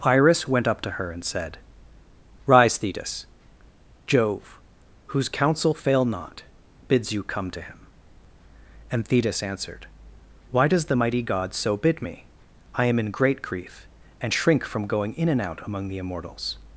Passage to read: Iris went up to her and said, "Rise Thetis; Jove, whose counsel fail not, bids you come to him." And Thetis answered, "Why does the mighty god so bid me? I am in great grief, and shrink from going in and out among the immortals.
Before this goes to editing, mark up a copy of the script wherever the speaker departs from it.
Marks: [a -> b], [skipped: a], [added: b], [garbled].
Iris went up to her and said, "Rise Thetis; Jove, whose counsel fail not, bids you come to him." And Thetis answered, "Why does the mighty god so bid me? I am in great grief, and shrink from going in and out among the immortals.